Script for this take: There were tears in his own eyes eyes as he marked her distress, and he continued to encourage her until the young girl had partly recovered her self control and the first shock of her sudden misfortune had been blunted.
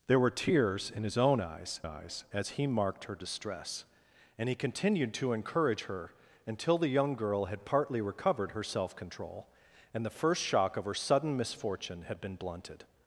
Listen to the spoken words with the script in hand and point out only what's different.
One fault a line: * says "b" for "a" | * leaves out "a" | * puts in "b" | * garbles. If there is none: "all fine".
all fine